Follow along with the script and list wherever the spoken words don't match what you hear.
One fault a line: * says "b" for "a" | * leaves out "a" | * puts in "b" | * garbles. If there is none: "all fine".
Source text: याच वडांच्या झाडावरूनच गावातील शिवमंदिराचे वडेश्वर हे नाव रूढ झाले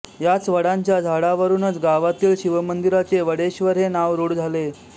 all fine